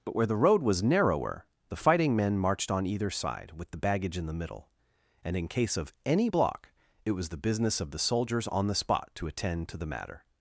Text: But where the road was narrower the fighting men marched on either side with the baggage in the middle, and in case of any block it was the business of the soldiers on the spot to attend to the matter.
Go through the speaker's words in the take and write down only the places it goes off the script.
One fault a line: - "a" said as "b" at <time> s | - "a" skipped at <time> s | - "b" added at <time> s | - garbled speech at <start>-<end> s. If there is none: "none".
none